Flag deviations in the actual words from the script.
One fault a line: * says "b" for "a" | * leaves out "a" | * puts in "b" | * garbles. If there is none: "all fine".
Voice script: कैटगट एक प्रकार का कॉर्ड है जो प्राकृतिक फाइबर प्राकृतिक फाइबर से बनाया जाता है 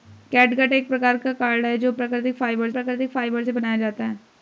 all fine